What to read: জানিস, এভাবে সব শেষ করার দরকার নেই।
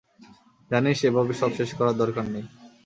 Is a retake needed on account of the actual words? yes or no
no